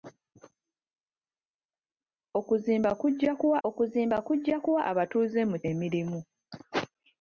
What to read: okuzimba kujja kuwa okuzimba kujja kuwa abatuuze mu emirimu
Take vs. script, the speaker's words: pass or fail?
pass